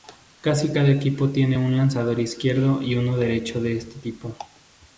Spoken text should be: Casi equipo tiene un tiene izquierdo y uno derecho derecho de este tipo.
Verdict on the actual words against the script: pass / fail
fail